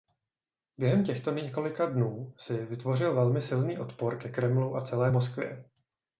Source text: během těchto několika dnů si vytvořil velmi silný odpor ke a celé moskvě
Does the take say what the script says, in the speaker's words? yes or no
no